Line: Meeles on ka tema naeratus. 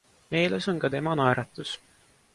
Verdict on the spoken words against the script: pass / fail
pass